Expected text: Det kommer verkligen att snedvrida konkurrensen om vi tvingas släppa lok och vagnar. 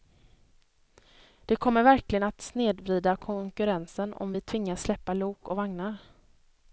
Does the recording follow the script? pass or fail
pass